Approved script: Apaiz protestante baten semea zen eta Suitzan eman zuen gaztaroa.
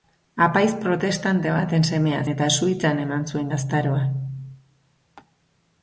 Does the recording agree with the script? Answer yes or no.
no